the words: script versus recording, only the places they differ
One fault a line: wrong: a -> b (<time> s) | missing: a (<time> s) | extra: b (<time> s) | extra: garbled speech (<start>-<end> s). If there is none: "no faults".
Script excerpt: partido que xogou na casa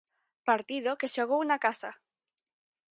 no faults